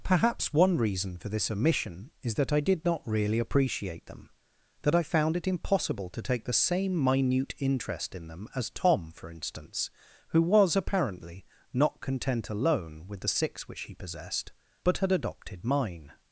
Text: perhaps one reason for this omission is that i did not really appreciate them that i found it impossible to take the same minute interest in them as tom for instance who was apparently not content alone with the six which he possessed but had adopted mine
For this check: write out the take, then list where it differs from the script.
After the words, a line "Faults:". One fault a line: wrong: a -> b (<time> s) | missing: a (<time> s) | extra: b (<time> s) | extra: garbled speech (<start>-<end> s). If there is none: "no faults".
perhaps one reason for this omission is that i did not really appreciate them that i found it impossible to take the same minute interest in them as tom for instance who was apparently not content alone with the six which he possessed but had adopted mine
Faults:
no faults